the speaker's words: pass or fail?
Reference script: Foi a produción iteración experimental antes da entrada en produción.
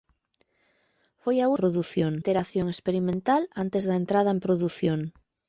pass